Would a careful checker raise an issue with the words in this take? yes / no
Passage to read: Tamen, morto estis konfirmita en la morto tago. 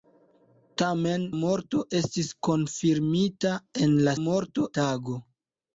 no